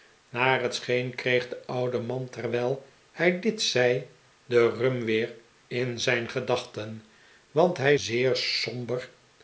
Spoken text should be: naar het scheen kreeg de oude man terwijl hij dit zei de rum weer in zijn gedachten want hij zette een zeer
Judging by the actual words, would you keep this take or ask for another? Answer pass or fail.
fail